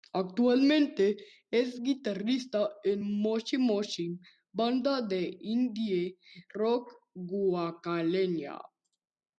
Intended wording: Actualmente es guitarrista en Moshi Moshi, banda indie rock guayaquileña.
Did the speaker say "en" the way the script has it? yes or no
yes